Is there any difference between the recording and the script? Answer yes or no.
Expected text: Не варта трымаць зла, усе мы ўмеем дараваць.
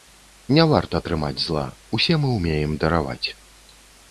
no